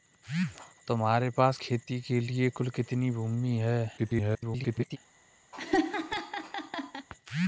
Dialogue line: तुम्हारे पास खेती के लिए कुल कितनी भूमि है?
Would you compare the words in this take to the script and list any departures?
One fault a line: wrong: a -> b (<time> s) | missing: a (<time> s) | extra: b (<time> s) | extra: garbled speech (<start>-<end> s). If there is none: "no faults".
extra: garbled speech (4.0-5.0 s)